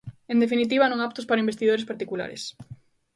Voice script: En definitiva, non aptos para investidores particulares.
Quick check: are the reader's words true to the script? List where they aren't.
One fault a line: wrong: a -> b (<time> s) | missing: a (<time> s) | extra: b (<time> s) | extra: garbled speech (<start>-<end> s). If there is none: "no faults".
no faults